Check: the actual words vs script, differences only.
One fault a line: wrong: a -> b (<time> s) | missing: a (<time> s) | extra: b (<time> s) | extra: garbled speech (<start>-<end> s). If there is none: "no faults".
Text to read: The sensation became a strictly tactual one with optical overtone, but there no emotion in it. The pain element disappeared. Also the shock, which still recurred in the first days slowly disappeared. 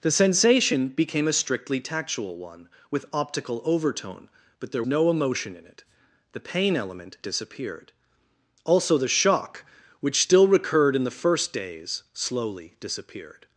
no faults